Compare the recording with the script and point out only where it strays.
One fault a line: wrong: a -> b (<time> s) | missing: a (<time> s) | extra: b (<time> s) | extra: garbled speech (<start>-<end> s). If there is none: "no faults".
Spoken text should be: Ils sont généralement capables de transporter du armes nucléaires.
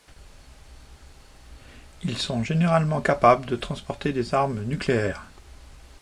wrong: du -> des (4.1 s)